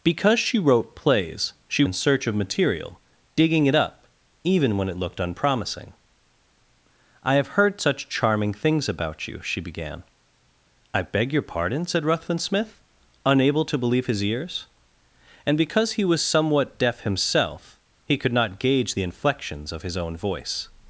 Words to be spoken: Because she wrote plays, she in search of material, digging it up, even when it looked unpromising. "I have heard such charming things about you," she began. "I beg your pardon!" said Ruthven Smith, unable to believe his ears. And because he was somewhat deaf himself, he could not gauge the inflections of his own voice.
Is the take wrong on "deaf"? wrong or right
right